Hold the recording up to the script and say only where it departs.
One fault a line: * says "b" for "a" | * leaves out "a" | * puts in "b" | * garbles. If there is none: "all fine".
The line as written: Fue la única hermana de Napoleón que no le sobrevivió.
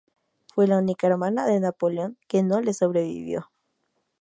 all fine